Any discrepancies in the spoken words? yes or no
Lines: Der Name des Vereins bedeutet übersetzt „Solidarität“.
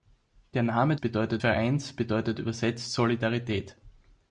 yes